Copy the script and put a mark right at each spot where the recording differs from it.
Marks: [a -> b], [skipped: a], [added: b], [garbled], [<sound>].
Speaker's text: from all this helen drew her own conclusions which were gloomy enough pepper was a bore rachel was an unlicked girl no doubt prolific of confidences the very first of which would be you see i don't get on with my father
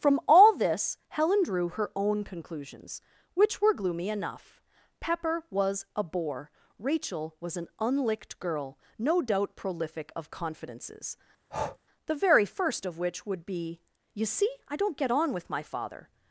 from all this helen drew her own conclusions which were gloomy enough pepper was a bore rachel was an unlicked girl no doubt prolific of confidences [breath] the very first of which would be you see i don't get on with my father